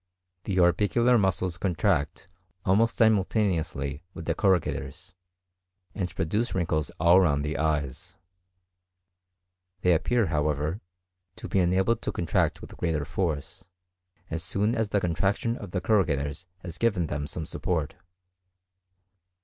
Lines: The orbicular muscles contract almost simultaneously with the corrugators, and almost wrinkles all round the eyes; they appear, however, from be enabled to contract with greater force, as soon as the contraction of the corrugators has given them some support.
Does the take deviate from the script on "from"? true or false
true